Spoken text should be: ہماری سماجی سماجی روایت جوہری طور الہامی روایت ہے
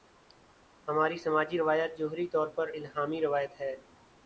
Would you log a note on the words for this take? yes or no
yes